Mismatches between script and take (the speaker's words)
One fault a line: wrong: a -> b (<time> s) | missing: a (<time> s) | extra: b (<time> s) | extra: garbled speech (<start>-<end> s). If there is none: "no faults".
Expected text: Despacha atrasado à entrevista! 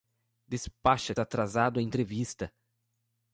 no faults